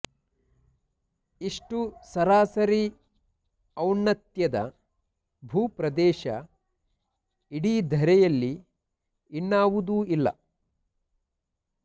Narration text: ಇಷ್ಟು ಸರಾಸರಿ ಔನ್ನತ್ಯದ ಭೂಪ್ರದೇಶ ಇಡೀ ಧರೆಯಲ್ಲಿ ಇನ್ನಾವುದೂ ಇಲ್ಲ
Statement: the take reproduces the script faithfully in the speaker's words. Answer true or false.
true